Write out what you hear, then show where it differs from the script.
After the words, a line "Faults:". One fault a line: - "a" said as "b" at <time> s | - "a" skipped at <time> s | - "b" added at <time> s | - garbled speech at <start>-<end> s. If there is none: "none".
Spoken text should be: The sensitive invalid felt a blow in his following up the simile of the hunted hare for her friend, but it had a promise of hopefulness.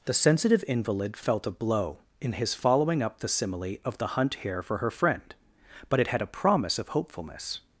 The sensitive invalid felt a blow in his following up the simile of the hunt hare for her friend, but it had a promise of hopefulness.
Faults:
- "hunted" said as "hunt" at 4.1 s